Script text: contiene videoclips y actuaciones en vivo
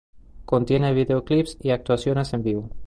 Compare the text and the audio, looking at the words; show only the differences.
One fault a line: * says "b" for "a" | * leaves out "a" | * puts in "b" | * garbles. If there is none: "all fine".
all fine